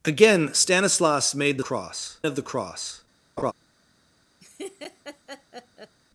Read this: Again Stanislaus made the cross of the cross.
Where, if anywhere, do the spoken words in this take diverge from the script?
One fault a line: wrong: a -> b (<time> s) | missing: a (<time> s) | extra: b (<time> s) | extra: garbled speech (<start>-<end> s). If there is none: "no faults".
no faults